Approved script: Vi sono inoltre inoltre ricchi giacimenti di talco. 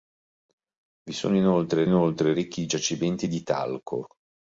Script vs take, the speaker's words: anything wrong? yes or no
no